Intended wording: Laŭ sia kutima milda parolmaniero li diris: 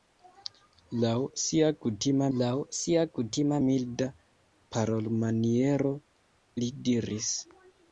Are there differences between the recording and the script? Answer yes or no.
yes